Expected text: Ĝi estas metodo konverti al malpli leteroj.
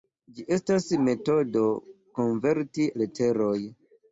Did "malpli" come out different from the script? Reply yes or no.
yes